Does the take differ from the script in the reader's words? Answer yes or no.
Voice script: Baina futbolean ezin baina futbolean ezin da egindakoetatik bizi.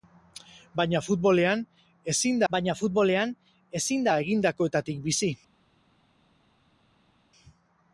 no